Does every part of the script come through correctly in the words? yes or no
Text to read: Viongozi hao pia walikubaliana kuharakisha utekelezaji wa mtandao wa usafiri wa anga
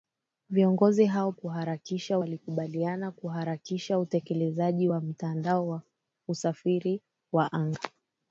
no